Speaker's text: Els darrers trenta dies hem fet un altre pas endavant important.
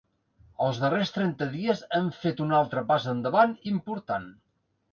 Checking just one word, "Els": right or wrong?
right